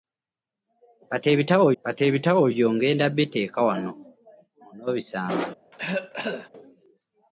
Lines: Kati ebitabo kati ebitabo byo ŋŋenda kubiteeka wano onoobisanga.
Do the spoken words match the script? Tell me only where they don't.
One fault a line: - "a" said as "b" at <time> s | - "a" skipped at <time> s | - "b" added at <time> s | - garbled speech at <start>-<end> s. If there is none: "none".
none